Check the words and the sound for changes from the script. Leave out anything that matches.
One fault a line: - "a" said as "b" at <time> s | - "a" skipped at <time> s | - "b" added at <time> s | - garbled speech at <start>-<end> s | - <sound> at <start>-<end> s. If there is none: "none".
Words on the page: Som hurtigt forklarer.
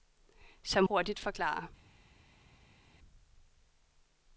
none